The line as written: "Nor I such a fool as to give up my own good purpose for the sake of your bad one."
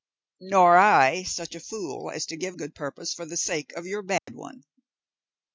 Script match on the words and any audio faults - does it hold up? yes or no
no